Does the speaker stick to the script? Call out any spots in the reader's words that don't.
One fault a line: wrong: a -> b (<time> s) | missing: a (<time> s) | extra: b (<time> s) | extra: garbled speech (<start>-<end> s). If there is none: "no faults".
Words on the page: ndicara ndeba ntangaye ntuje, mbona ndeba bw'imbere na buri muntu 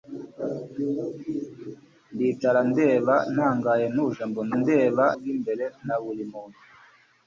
no faults